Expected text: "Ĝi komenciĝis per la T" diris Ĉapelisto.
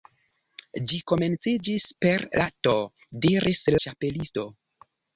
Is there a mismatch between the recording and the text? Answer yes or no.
no